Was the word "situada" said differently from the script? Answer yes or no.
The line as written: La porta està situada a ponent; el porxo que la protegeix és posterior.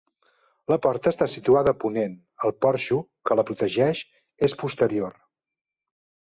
no